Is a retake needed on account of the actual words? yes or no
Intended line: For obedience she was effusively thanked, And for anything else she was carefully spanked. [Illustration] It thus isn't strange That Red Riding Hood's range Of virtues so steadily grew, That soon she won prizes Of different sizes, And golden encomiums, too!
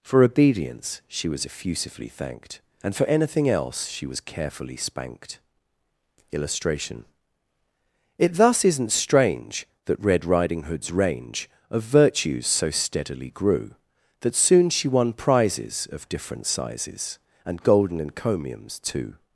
no